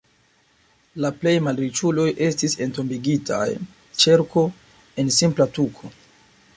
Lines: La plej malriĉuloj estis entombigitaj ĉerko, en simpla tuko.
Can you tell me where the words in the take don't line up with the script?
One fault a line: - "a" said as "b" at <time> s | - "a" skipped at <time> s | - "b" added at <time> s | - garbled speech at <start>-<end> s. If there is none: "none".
none